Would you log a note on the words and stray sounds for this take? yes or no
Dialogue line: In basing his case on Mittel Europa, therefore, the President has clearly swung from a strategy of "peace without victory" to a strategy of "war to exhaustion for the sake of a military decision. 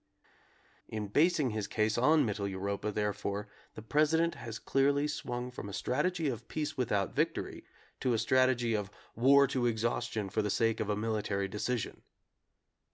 no